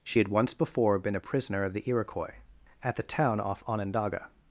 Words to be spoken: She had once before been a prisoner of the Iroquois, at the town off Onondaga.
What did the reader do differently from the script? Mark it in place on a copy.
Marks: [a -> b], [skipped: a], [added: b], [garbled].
She had once before been a prisoner of the Iroquois, at the town off Onondaga.